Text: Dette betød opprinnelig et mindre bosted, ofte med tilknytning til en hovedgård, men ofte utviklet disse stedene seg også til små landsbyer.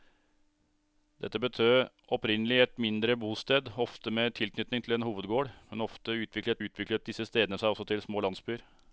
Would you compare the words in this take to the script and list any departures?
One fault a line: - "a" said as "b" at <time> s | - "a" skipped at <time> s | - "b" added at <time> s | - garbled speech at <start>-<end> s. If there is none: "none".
- "utviklet" added at 6.7 s